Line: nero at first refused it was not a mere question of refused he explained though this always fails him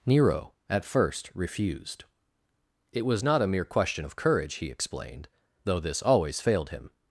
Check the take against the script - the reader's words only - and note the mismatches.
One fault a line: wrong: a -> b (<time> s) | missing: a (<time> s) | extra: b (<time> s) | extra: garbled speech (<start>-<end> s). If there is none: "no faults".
wrong: refused -> courage (4.1 s)
wrong: fails -> failed (6.4 s)